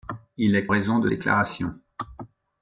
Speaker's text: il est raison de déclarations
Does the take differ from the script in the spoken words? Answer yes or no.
no